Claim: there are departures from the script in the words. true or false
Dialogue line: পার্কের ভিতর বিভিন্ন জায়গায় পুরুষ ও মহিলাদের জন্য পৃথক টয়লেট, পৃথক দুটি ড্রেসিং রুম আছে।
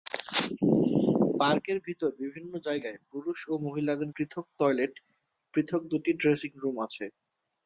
true